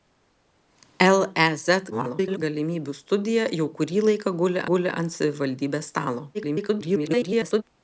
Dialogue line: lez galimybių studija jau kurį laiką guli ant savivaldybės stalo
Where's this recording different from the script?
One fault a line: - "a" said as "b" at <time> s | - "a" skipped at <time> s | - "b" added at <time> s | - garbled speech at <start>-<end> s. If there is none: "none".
- garbled speech at 1.9-2.4 s
- "guli" added at 4.7 s
- garbled speech at 6.3-7.6 s